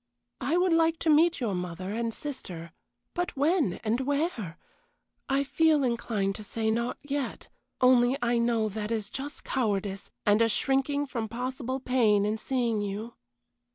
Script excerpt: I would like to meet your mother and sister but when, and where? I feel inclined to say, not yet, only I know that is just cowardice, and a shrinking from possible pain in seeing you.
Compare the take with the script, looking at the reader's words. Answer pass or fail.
pass